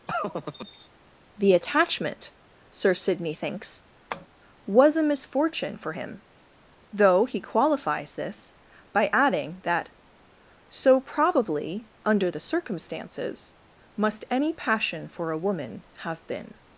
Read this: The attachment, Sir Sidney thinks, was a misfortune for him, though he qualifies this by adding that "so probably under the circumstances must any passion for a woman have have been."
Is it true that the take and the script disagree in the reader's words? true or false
true